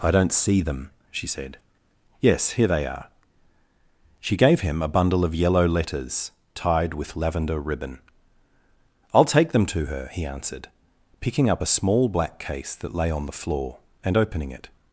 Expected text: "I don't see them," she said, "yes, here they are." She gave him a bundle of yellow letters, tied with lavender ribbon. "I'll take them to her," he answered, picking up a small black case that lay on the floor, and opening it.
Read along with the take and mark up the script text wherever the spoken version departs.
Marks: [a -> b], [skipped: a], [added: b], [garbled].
"I don't see them," she said, "yes, here they are." She gave him a bundle of yellow letters, tied with lavender ribbon. "I'll take them to her," he answered, picking up a small black case that lay on the floor, and opening it.